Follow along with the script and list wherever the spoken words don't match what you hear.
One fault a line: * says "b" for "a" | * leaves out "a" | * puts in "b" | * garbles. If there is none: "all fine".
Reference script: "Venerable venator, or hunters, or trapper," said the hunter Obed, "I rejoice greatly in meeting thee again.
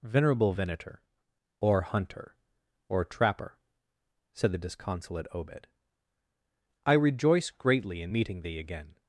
* says "hunter" for "hunters"
* says "disconsolate" for "hunter"